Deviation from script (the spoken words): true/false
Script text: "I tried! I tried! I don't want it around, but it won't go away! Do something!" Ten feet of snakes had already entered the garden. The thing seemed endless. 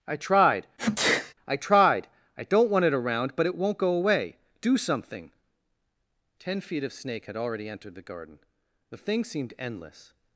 true